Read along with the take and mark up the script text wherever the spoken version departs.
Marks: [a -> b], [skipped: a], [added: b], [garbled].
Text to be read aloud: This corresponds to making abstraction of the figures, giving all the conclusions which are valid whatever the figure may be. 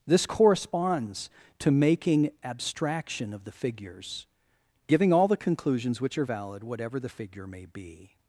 This corresponds to making abstraction of the figures, giving all the conclusions which are valid whatever the figure may be.